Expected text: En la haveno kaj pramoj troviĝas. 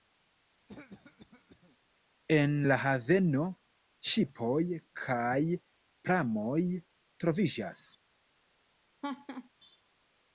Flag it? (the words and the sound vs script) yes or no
yes